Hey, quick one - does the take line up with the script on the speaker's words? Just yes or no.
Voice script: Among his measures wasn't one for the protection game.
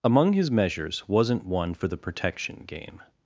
yes